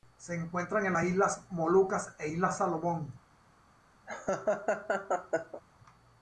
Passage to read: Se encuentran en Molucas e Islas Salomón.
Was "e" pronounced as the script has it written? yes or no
yes